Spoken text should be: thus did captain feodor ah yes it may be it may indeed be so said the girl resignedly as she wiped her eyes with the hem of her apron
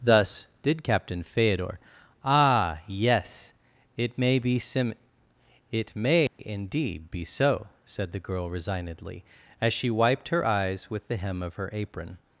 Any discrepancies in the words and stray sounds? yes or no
yes